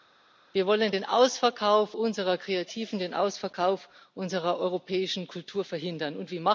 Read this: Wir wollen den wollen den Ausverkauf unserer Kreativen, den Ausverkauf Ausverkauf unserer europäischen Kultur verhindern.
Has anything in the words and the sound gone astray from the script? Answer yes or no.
yes